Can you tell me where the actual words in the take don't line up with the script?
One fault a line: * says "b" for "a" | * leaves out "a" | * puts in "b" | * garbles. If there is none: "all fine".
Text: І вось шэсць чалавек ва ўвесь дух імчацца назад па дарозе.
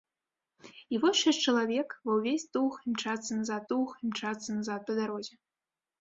* puts in "дух імчацца назад"